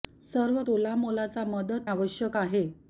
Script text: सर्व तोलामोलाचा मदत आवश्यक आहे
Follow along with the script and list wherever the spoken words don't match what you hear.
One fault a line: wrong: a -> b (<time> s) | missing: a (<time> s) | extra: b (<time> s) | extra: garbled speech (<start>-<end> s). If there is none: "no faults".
no faults